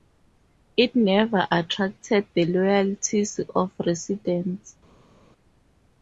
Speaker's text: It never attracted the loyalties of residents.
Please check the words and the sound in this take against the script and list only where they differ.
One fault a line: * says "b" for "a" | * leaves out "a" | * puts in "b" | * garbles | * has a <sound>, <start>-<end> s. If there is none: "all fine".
all fine